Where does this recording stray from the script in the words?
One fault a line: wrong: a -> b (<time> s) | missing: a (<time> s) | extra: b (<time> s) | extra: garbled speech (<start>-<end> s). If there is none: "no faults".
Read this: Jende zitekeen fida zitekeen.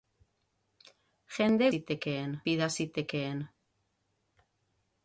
no faults